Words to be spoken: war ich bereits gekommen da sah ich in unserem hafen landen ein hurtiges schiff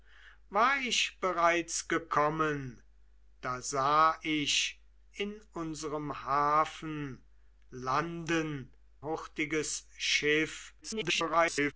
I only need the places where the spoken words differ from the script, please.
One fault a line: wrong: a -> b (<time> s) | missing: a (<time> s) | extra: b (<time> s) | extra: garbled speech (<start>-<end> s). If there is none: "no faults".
missing: ein (8.7 s)
extra: garbled speech (10.8-11.7 s)